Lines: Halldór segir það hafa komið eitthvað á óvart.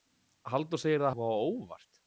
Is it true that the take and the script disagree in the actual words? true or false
true